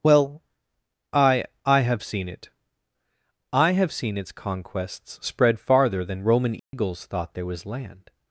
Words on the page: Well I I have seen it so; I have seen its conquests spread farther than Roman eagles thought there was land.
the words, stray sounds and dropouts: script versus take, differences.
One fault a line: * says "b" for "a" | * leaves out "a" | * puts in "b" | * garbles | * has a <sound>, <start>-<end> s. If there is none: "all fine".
* leaves out "so"
* has a dropout, 6.6-6.7 s